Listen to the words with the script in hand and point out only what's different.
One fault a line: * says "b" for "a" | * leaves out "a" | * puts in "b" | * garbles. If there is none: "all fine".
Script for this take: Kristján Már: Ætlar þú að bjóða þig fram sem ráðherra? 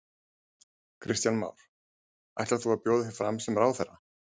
all fine